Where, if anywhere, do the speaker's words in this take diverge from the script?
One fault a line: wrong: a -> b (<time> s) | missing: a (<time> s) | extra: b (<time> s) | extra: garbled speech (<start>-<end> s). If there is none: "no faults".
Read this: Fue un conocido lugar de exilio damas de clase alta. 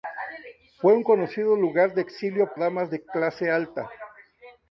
no faults